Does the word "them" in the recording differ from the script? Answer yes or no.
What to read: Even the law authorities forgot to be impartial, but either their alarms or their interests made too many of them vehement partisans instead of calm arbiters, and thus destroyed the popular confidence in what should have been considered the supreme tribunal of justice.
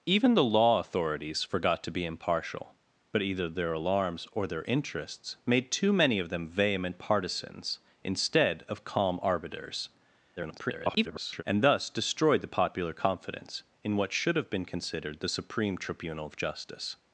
no